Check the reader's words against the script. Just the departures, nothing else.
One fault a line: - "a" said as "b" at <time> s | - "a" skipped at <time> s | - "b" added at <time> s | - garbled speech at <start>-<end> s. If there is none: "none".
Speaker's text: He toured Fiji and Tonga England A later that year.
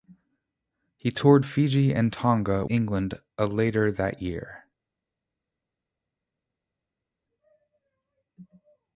none